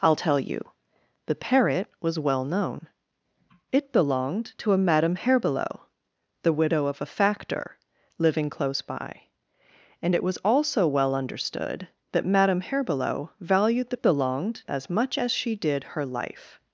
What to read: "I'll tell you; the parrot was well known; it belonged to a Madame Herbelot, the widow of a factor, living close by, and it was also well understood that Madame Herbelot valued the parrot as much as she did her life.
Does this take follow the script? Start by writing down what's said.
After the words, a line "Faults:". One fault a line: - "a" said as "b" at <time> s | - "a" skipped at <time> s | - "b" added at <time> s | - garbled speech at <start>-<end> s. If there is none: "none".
"I'll tell you; the parrot was well known; it belonged to a Madame Herbelot, the widow of a factor, living close by, and it was also well understood that Madame Herbelot valued the belonged as much as she did her life.
Faults:
- "parrot" said as "belonged" at 14.0 s